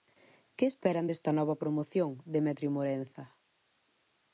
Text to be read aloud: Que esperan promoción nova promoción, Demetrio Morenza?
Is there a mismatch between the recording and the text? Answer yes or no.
yes